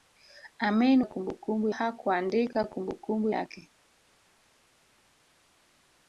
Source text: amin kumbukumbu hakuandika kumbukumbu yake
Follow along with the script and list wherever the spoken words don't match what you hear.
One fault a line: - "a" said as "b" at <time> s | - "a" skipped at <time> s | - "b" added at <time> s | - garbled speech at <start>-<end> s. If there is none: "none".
none